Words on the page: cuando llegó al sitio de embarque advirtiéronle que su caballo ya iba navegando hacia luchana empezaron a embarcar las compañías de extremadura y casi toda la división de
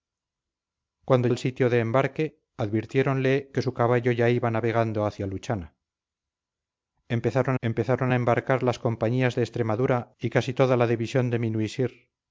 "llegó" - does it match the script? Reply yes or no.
no